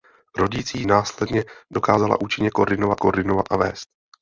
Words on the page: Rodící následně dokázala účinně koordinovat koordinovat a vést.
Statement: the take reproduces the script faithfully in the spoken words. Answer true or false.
true